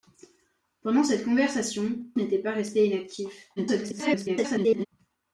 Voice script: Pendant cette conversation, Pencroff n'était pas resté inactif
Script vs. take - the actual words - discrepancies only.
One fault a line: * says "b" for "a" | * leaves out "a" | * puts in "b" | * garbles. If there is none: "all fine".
* leaves out "Pencroff"
* garbles